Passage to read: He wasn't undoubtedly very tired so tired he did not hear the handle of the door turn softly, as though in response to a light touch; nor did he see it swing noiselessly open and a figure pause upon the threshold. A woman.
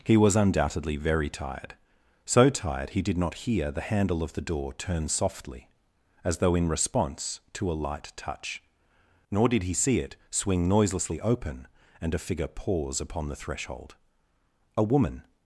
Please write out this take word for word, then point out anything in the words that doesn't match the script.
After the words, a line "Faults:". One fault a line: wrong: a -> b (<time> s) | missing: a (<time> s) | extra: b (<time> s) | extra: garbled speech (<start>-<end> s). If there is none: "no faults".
He was undoubtedly very tired so tired he did not hear the handle of the door turn softly, as though in response to a light touch; nor did he see it swing noiselessly open and a figure pause upon the threshold. A woman.
Faults:
wrong: wasn't -> was (0.2 s)